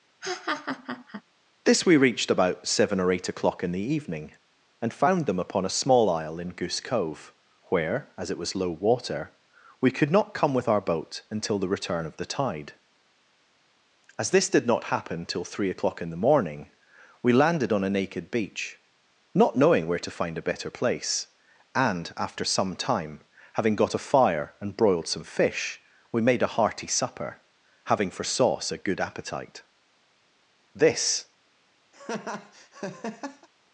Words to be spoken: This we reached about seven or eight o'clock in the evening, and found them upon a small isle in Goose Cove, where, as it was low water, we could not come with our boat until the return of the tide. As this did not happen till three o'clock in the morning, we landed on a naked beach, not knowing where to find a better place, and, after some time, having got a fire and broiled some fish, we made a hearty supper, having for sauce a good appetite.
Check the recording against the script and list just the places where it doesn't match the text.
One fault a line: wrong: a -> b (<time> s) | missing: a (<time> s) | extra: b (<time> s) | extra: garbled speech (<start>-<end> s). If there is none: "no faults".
extra: This (30.7 s)